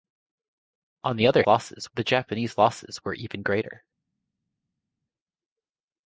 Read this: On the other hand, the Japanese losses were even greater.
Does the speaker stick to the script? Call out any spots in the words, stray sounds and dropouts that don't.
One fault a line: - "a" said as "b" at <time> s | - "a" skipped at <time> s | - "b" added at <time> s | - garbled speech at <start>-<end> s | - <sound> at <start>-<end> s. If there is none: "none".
- "hand" said as "losses" at 1.5 s